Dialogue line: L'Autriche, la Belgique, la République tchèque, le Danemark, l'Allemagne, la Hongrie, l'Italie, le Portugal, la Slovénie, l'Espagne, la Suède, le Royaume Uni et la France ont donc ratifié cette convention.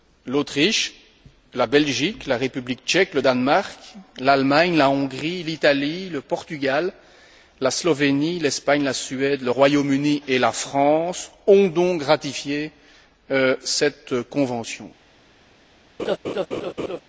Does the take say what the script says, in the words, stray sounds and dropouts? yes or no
no